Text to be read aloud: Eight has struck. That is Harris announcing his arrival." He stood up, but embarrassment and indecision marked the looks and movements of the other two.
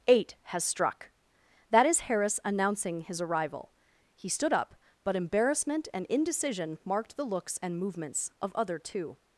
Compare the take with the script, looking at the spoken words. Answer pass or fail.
fail